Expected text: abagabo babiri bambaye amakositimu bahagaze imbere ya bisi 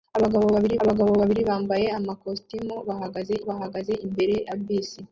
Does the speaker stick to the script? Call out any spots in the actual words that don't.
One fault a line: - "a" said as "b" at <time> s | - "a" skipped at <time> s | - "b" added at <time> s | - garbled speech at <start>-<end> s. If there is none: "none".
- "abagabo babiri" added at 0.8 s
- "bahagaze" added at 3.5 s